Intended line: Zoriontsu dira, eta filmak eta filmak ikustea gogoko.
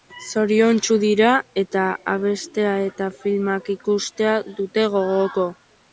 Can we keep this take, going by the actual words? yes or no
no